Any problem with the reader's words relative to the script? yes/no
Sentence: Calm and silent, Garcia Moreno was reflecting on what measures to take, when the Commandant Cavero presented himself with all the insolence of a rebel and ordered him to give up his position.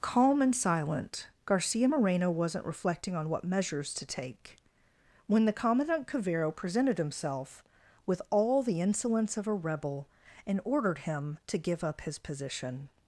yes